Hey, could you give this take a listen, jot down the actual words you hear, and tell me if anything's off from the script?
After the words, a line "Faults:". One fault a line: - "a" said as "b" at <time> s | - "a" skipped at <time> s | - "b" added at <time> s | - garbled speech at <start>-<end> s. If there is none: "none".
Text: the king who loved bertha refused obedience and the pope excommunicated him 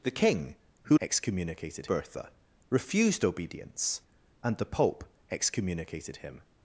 the king who excommunicated bertha refused obedience and the pope excommunicated him
Faults:
- "loved" said as "excommunicated" at 1.0 s